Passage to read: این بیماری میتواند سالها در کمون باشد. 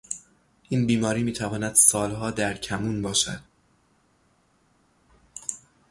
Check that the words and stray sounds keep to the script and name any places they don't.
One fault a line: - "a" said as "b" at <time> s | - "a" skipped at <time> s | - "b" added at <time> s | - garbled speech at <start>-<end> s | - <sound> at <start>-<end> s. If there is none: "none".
none